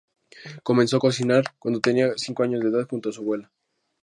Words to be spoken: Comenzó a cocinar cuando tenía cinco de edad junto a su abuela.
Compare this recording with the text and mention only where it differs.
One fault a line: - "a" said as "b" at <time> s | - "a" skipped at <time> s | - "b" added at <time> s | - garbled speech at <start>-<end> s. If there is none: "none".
- "años" added at 2.4 s